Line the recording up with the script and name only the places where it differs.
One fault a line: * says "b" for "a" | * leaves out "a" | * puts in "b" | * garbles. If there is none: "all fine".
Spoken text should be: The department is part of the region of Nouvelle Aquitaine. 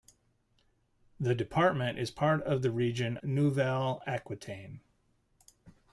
* leaves out "of"